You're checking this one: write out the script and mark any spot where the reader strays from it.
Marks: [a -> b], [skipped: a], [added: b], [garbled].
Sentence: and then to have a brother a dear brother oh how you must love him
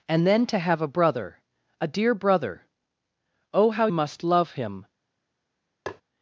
and then to have a brother a dear brother oh how [skipped: you] must love him